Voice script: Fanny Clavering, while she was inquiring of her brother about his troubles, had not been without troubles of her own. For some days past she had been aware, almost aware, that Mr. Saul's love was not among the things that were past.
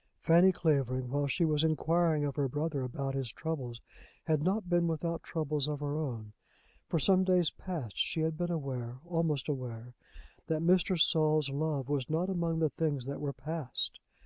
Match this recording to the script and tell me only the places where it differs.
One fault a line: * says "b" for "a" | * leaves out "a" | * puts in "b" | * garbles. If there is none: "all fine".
all fine